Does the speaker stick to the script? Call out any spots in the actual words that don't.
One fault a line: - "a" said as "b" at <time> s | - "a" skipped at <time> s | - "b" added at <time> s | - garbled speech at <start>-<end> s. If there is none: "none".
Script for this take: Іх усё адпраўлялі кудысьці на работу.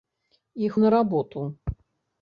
- "усё адпраўлялі кудысьці" skipped at 0.8 s